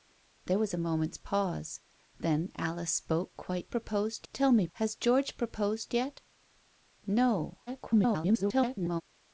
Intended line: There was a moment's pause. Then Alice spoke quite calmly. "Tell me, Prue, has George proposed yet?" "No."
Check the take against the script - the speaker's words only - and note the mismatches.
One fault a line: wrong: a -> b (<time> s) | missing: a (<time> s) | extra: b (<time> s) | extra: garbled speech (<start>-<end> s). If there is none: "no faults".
wrong: calmly -> proposed (3.7 s)
missing: Prue (4.7 s)
extra: garbled speech (7.7-9.0 s)